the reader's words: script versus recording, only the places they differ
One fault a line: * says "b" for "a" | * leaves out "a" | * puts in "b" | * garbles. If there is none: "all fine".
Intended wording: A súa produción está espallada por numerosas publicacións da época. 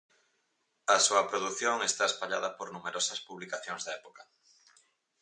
all fine